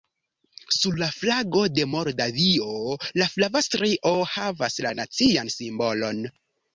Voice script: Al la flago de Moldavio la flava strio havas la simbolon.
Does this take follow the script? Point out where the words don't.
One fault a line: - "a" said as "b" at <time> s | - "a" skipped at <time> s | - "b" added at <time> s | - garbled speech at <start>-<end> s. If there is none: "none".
- "Al" said as "Sur" at 0.8 s
- "nacian" added at 5.0 s